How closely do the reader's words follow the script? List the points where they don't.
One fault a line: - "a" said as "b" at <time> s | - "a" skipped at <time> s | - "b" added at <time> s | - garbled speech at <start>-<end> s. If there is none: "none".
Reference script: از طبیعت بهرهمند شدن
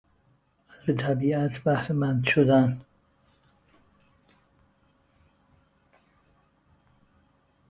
none